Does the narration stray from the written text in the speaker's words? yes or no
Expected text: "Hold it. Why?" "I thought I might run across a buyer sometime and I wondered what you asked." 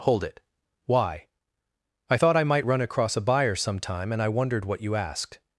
no